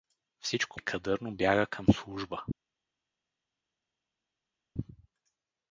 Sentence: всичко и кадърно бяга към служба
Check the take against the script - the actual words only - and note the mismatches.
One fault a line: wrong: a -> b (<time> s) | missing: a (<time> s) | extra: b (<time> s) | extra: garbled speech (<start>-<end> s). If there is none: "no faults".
no faults